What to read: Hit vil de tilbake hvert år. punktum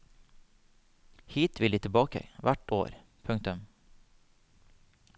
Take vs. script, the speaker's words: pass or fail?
pass